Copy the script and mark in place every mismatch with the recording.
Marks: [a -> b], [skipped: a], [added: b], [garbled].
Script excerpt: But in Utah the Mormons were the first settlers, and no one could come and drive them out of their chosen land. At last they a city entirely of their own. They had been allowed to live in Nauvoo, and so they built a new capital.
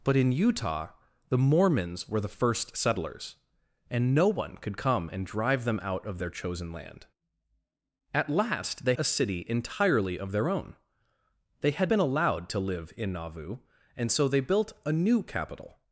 But in Utah the Mormons were the first settlers, and no one could come and drive them out of their chosen land. At last they a city entirely of their own. They had been allowed to live in Nauvoo, and so they built a new capital.